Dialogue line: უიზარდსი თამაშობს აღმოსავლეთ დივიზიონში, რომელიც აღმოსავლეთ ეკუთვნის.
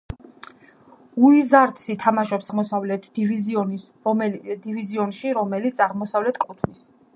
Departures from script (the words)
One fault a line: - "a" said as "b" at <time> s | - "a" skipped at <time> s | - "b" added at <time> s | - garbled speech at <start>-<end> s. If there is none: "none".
none